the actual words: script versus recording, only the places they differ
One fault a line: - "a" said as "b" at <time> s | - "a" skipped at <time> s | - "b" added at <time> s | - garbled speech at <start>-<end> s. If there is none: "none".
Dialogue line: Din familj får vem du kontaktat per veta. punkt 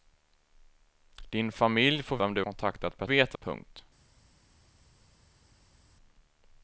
none